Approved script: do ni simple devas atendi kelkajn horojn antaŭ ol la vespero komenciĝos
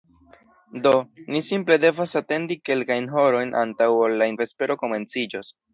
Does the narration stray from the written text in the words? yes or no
no